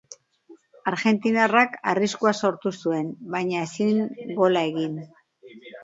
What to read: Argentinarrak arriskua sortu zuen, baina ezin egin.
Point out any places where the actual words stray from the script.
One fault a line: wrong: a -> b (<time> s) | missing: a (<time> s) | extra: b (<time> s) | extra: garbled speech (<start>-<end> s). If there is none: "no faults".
extra: gola (4.4 s)